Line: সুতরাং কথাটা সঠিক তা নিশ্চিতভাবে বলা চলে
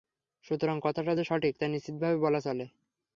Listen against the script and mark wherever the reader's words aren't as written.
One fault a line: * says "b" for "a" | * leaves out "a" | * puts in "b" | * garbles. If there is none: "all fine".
* puts in "যে"